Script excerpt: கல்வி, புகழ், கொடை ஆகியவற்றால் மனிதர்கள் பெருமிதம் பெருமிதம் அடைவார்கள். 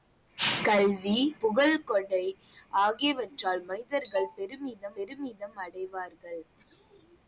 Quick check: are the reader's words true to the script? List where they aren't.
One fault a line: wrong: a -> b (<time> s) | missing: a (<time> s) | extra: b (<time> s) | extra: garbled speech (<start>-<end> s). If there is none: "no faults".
no faults